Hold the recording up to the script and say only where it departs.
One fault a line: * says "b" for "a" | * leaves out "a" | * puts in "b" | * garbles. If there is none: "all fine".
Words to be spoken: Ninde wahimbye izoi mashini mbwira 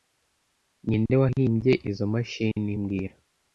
all fine